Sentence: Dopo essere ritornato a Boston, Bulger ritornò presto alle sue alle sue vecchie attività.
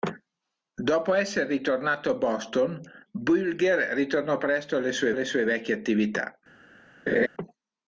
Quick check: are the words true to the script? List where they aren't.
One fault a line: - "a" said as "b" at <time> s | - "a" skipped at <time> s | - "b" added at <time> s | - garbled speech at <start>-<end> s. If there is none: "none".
none